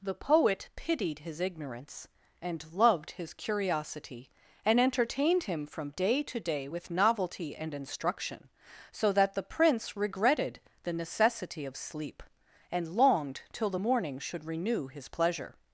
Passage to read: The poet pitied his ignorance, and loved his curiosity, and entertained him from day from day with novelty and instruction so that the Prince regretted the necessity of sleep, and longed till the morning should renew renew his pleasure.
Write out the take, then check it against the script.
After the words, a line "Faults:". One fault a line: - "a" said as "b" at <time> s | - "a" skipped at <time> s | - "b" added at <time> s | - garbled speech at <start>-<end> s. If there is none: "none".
The poet pitied his ignorance, and loved his curiosity, and entertained him from day to day with novelty and instruction so that the Prince regretted the necessity of sleep, and longed till the morning should renew his pleasure.
Faults:
- "from" said as "to" at 6.2 s
- "renew" skipped at 14.9 s